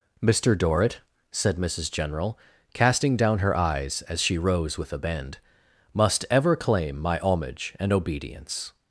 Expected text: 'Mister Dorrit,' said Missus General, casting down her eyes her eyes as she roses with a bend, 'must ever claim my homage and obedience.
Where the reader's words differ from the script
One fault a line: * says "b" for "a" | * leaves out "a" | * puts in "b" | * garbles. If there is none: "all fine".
* leaves out "her eyes"
* says "rose" for "roses"